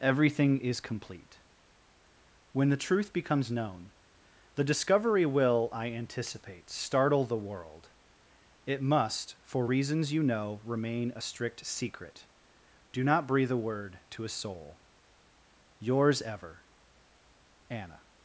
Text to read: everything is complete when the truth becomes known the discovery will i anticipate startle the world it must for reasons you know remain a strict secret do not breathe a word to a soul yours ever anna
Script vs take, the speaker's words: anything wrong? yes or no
no